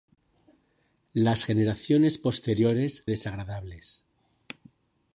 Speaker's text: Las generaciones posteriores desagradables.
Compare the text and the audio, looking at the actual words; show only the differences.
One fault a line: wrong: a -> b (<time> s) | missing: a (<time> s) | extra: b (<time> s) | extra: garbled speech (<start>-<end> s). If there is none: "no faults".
no faults